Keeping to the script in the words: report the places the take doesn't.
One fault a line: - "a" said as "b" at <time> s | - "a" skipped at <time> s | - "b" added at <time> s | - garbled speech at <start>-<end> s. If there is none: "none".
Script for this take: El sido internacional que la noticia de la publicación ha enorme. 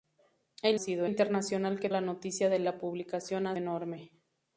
none